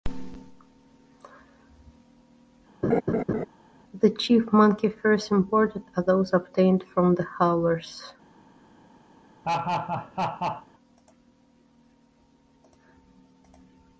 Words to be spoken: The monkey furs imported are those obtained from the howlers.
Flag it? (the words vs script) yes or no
yes